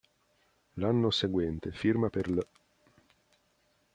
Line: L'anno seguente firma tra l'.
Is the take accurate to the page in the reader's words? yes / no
no